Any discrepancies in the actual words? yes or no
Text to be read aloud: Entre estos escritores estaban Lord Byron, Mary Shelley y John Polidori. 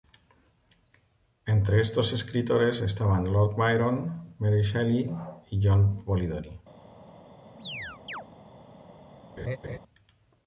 no